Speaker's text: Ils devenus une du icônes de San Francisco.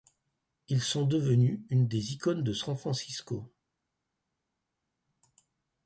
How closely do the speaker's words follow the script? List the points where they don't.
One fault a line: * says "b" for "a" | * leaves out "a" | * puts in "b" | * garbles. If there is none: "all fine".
* puts in "sont"
* says "des" for "du"